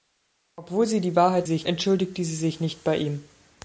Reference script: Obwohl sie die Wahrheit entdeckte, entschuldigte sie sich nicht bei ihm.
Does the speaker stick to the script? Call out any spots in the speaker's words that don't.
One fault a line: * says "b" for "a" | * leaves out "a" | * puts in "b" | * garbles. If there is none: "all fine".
* says "sich" for "entdeckte"